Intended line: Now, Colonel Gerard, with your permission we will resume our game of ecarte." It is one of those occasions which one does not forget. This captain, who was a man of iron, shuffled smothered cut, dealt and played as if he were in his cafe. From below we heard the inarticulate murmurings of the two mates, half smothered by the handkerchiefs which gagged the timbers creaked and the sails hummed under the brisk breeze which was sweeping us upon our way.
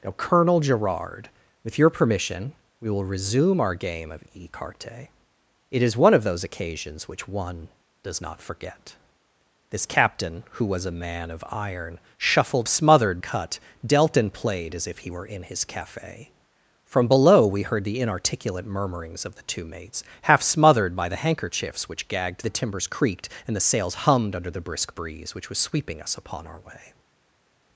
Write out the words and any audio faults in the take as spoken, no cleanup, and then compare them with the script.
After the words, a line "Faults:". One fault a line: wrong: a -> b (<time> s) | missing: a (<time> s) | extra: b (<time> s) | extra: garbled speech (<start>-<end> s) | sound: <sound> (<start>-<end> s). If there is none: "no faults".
Now, Colonel Gerard, with your permission we will resume our game of ecarte." It is one of those occasions which one does not forget. This captain, who was a man of iron, shuffled smothered cut, dealt and played as if he were in his cafe. From below we heard the inarticulate murmurings of the two mates, half smothered by the handkerchiefs which gagged the timbers creaked and the sails hummed under the brisk breeze which was sweeping us upon our way.
Faults:
no faults